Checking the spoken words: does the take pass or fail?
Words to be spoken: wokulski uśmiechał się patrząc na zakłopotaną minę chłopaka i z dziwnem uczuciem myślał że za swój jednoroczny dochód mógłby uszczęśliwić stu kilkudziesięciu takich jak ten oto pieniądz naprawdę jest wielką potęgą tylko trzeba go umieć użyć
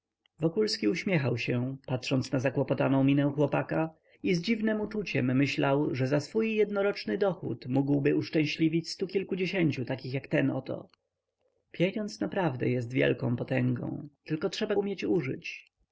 fail